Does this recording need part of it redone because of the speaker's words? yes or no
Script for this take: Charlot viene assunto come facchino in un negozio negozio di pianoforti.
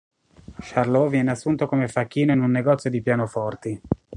yes